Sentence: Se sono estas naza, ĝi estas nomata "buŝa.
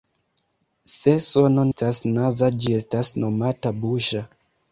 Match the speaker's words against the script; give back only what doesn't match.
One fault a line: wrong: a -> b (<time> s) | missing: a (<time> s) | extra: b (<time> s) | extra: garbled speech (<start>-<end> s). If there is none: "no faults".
no faults